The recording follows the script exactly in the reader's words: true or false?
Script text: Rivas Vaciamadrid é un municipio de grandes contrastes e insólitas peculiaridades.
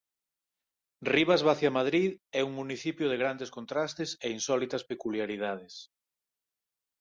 true